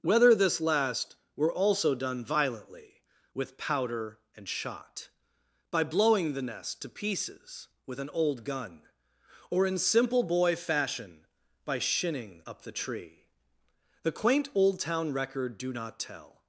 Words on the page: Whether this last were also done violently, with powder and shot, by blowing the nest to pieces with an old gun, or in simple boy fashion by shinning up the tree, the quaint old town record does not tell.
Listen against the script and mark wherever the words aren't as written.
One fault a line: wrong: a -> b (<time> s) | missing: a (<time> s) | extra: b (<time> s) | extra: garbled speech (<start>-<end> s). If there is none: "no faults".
wrong: does -> do (15.6 s)